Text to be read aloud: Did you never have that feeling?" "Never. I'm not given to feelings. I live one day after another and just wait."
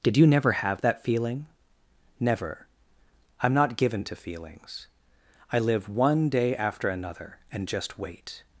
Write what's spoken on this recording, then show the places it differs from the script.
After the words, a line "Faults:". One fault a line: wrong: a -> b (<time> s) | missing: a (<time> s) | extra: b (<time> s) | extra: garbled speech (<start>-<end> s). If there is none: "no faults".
Did you never have that feeling?" "Never. I'm not given to feelings. I live one day after another and just wait."
Faults:
no faults